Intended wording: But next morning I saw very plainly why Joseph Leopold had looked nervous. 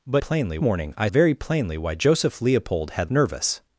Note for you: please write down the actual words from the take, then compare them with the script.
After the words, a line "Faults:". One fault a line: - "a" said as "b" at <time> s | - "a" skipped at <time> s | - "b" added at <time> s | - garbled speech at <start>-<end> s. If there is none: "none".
But plainly morning I very plainly why Joseph Leopold had nervous.
Faults:
- "next" said as "plainly" at 0.1 s
- "saw" skipped at 1.1 s
- "looked" skipped at 3.1 s